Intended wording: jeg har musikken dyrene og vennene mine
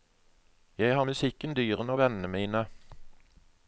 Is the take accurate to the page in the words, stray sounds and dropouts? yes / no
yes